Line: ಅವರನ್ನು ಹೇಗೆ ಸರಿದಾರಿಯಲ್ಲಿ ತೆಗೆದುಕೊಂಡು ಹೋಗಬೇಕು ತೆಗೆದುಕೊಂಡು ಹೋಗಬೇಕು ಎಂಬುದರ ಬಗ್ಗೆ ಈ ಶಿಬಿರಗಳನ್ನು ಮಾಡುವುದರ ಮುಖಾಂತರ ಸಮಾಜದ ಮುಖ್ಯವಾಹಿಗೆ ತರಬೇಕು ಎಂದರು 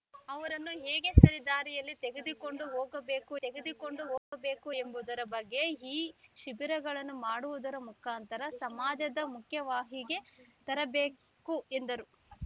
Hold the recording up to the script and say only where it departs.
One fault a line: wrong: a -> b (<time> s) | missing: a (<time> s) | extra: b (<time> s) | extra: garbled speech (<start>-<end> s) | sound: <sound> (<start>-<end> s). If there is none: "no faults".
sound: dropout (4.2-4.3 s)